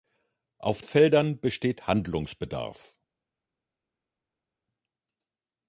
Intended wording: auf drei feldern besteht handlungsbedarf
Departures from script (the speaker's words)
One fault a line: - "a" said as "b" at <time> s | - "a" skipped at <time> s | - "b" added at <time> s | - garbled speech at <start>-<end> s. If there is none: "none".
- "drei" skipped at 0.8 s